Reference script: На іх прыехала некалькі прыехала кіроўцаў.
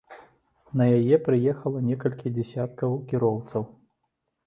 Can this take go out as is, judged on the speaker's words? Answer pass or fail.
fail